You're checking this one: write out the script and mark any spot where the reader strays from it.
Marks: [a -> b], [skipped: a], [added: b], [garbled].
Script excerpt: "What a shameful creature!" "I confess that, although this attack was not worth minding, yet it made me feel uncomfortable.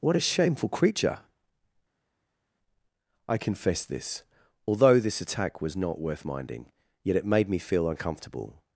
"What a shameful creature!" "I confess [that, -> this] although this attack was not worth minding, yet it made me feel uncomfortable.